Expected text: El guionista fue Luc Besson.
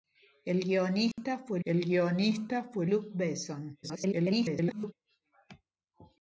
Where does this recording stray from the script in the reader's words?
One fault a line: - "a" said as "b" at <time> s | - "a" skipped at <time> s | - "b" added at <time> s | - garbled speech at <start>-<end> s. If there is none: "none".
- "el guionista fue" added at 1.6 s
- garbled speech at 3.8-4.9 s